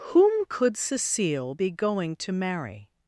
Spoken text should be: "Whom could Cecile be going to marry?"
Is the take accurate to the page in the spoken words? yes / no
yes